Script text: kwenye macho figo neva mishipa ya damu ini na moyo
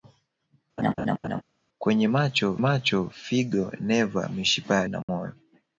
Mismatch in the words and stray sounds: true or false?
true